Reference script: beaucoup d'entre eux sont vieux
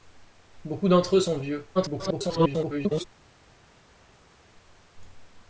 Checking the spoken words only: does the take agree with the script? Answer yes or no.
no